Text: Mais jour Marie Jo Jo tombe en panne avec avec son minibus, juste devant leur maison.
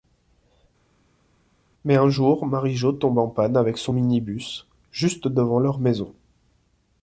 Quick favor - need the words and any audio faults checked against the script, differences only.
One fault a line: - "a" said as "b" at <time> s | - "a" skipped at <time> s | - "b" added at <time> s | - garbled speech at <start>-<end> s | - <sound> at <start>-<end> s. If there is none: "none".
- "un" added at 2.0 s
- "Jo" skipped at 2.9 s
- "avec" skipped at 3.8 s